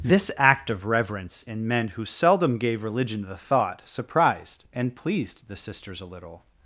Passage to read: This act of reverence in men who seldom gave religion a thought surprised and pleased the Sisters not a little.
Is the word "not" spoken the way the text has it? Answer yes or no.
no